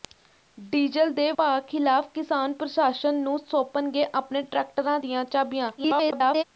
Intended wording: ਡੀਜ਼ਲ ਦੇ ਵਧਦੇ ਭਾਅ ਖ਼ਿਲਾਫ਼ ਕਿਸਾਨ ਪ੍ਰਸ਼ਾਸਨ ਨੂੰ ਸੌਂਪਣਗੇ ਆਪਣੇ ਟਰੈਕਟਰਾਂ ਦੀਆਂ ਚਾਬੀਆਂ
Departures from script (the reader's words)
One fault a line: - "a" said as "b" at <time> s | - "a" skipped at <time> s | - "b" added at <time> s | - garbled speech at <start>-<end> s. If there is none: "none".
- "ਵਧਦੇ" skipped at 1.3 s
- garbled speech at 5.8-6.4 s